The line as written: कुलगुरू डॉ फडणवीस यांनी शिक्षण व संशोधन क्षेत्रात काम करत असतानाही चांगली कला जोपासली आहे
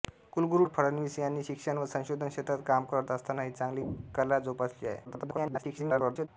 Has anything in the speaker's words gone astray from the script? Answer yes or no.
yes